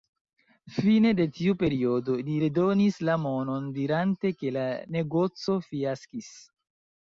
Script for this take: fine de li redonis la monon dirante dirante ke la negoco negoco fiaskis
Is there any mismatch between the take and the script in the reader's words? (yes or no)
yes